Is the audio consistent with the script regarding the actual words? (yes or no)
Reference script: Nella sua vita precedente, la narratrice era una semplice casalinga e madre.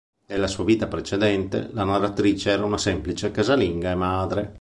yes